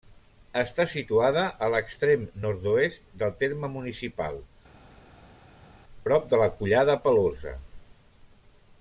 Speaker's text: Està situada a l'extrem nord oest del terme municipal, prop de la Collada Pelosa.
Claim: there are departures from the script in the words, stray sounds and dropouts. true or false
false